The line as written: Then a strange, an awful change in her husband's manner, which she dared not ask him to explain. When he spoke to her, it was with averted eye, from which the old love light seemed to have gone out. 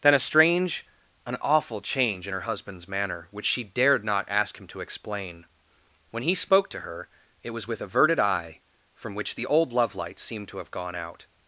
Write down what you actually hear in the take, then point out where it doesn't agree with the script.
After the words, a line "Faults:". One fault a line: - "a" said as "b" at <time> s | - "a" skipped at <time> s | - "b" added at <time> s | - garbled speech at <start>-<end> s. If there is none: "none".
Then a strange, an awful change in her husband's manner, which she dared not ask him to explain. When he spoke to her, it was with averted eye, from which the old love light seemed to have gone out.
Faults:
none